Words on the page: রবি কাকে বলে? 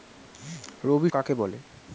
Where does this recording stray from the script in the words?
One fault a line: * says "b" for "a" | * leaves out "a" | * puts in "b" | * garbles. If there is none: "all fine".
all fine